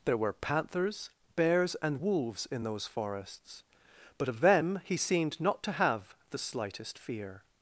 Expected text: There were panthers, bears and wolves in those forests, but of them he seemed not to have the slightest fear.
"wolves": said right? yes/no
yes